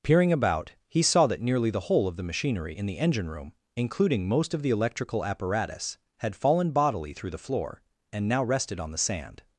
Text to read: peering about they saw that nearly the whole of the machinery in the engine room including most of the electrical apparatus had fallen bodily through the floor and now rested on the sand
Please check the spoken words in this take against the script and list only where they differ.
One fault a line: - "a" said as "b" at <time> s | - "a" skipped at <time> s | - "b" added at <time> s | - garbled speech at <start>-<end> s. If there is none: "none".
- "they" said as "he" at 0.9 s